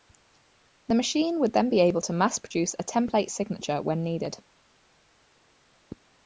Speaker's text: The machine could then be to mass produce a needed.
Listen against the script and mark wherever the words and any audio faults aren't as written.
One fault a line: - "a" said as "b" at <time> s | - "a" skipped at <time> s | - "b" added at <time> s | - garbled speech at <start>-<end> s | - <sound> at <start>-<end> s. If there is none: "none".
- "could" said as "would" at 1.4 s
- "able" added at 1.8 s
- "template signature when" added at 2.8 s